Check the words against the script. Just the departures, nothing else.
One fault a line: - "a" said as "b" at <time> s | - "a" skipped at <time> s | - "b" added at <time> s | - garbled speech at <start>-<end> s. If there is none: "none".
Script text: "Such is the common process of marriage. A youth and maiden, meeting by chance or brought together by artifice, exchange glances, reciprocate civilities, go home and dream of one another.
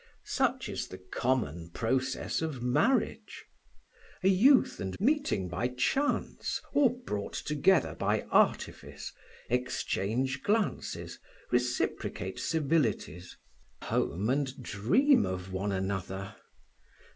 - "maiden" skipped at 5.0 s
- "go" skipped at 13.4 s